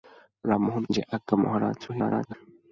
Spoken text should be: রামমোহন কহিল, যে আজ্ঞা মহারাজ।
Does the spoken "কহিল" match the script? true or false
false